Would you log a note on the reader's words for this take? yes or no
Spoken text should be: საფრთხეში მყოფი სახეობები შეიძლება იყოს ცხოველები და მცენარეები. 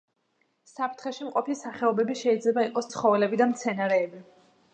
no